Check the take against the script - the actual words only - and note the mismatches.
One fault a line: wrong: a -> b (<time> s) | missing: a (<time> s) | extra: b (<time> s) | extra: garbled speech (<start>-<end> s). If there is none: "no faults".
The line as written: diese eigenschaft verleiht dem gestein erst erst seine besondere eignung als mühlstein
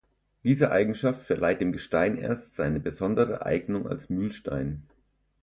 missing: erst (2.5 s)